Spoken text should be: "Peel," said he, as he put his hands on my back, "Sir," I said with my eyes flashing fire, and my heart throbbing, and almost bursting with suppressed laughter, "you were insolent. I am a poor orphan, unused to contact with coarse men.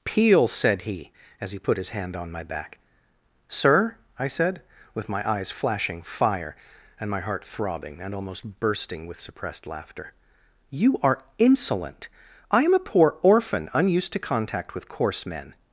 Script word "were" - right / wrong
wrong